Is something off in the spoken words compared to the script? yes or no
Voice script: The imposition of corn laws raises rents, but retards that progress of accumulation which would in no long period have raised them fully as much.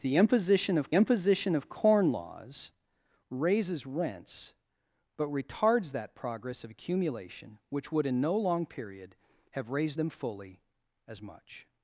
yes